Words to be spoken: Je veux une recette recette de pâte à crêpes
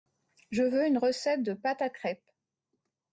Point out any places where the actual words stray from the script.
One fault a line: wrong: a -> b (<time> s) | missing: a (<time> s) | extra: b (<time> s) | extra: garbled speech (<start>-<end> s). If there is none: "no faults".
missing: recette (1.4 s)